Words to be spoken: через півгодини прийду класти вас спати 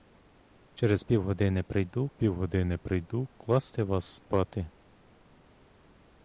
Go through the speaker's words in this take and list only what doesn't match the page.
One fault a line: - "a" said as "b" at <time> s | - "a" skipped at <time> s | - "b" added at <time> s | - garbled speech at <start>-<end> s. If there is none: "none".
- "півгодини прийду" added at 2.1 s